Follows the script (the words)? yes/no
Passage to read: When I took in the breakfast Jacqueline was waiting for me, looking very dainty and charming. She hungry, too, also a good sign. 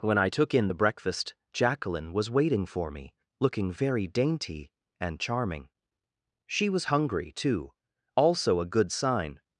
no